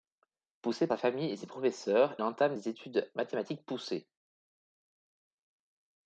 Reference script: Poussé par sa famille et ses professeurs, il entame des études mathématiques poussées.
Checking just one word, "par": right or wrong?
wrong